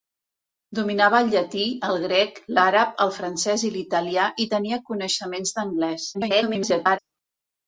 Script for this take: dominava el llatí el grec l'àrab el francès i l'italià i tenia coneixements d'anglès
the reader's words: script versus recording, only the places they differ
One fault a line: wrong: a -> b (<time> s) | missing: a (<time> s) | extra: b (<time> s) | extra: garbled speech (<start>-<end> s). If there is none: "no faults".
extra: garbled speech (6.1-7.0 s)